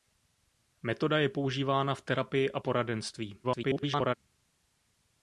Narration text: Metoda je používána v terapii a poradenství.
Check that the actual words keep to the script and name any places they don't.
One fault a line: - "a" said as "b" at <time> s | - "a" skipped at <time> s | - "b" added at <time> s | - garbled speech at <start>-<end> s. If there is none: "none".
- garbled speech at 3.4-4.2 s